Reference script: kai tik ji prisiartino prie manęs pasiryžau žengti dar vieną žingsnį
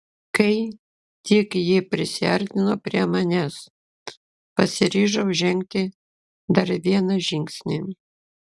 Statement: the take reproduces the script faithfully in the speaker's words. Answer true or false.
true